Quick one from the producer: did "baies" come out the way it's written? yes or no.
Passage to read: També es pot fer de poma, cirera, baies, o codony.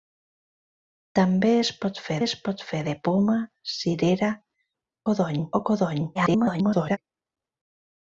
no